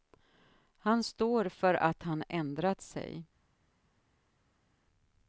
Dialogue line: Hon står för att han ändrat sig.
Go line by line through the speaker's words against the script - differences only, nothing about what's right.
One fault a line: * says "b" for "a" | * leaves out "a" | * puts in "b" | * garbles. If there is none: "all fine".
* says "Han" for "Hon"